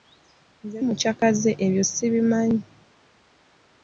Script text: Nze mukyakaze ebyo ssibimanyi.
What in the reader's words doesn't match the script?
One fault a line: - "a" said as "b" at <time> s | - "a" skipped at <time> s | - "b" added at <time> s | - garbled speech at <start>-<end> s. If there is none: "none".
none